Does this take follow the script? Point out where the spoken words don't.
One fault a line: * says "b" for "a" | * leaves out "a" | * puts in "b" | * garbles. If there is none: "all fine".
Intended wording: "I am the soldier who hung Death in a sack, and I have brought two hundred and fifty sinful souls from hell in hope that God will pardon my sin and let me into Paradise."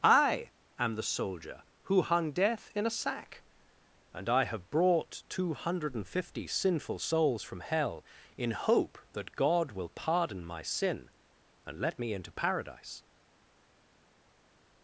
all fine